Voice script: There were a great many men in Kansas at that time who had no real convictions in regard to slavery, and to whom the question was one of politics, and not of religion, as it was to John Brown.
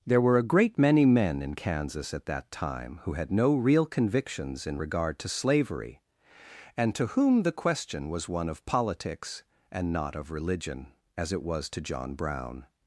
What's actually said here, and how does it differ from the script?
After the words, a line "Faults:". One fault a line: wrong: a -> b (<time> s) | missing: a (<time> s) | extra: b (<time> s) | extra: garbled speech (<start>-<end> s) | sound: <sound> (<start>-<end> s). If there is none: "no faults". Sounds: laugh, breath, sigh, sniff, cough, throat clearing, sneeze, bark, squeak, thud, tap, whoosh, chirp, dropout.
There were a great many men in Kansas at that time who had no real convictions in regard to slavery, and to whom the question was one of politics, and not of religion, as it was to John Brown.
Faults:
no faults